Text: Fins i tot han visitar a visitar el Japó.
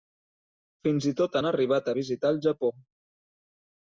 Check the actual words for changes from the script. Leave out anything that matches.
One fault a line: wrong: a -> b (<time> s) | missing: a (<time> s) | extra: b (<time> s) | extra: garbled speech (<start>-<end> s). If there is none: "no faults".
wrong: visitar -> arribat (1.5 s)